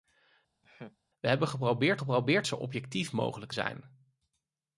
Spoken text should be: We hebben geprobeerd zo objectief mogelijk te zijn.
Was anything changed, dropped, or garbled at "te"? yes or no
yes